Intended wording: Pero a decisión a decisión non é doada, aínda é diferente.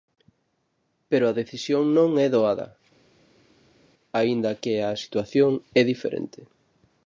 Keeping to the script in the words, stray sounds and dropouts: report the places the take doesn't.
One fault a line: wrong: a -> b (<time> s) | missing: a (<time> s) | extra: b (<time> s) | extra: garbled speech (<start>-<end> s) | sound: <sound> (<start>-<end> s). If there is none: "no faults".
missing: a decisión (1.8 s)
extra: que a situación (4.6 s)